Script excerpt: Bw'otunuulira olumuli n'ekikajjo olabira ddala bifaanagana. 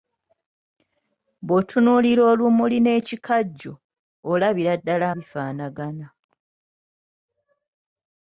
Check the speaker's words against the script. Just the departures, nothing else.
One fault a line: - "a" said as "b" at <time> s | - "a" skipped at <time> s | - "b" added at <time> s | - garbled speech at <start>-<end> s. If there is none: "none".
none